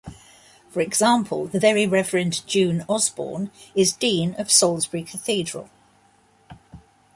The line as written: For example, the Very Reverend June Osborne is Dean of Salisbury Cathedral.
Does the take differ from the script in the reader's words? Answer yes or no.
no